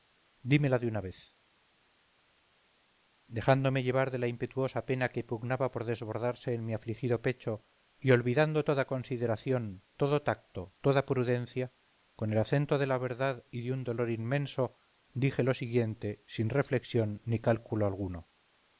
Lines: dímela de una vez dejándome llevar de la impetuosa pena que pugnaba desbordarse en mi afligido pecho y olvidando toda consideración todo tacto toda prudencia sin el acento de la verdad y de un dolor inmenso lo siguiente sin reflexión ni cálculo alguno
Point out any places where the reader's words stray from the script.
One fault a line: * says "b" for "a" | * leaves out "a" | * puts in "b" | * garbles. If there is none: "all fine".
* puts in "por"
* says "con" for "sin"
* puts in "dije"